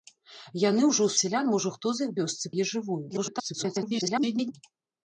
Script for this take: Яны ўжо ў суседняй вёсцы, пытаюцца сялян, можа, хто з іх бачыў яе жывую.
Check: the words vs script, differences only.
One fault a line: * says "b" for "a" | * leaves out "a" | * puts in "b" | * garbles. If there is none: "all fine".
* leaves out "суседняй вёсцы пытаюцца"
* says "вёсцы" for "бачыў"
* garbles